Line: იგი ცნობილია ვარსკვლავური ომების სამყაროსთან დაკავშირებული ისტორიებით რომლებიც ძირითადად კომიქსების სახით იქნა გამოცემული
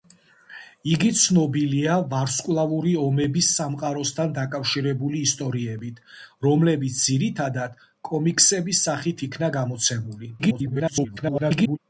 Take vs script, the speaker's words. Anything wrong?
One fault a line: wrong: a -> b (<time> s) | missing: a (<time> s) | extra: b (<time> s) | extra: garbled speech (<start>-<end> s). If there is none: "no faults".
extra: garbled speech (10.4-11.8 s)